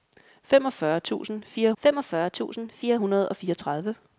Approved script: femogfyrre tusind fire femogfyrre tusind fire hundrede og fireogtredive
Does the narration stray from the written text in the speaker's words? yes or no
no